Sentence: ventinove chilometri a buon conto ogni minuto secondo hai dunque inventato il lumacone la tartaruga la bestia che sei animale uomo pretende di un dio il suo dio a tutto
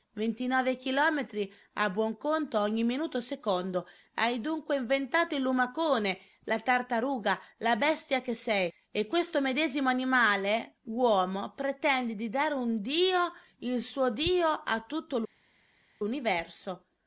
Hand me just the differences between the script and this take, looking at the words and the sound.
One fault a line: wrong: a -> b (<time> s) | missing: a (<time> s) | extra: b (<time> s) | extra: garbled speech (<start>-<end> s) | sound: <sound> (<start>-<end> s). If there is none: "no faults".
extra: e questo medesimo (8.9 s)
extra: dare (12.3 s)